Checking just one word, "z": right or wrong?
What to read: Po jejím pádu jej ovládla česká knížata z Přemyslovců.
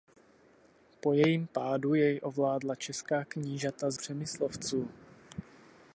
right